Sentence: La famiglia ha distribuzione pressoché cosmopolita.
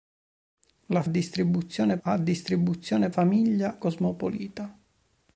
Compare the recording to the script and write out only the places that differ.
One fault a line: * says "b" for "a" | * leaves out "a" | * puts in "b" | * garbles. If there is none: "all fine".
* says "distribuzione" for "famiglia"
* says "famiglia" for "pressoché"